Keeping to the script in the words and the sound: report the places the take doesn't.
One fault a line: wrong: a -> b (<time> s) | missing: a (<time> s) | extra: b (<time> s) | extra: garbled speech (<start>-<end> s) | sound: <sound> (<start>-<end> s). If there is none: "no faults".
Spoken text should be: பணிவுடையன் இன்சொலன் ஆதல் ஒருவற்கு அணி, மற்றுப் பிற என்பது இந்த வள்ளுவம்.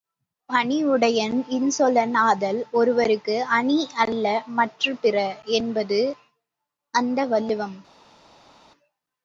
extra: அல்ல (4.0 s)
wrong: இந்த -> அந்த (6.9 s)